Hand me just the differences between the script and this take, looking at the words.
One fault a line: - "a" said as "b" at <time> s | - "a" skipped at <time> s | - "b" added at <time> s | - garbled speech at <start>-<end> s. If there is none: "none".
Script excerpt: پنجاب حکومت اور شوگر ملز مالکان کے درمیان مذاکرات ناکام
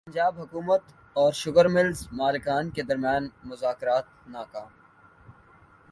none